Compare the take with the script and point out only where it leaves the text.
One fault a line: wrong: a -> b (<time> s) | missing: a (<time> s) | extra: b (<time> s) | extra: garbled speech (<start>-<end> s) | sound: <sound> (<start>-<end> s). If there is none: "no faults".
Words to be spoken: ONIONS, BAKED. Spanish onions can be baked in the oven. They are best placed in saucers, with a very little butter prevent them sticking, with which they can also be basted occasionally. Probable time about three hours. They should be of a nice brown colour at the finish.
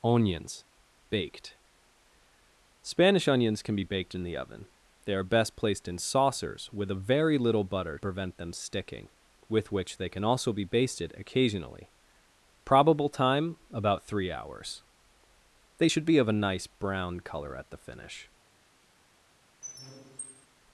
sound: squeak (19.6-20.5 s)